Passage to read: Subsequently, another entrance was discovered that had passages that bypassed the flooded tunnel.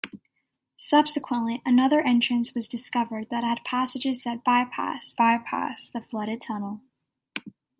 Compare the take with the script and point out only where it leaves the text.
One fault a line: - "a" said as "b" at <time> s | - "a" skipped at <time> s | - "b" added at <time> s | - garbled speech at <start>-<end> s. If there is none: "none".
- "bypassed" added at 5.2 s